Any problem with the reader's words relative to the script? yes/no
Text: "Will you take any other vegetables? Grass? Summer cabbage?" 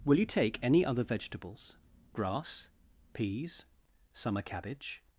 yes